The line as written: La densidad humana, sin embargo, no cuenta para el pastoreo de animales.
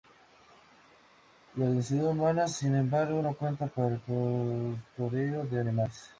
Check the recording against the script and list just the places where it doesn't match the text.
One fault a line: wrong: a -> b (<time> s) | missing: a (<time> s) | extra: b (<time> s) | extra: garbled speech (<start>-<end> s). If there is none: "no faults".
no faults